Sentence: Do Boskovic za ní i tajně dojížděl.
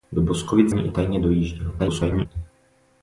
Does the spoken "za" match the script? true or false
false